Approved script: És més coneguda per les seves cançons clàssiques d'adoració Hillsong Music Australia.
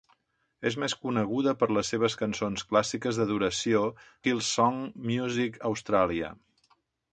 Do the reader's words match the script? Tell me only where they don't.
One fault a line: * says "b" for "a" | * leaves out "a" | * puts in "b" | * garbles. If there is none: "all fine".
all fine